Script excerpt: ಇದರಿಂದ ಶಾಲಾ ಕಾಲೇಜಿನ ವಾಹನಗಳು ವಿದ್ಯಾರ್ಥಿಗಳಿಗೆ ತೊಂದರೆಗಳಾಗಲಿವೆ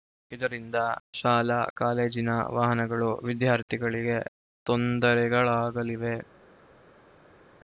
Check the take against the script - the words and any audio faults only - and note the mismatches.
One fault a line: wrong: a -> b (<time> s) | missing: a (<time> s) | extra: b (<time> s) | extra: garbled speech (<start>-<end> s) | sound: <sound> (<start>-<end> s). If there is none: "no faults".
no faults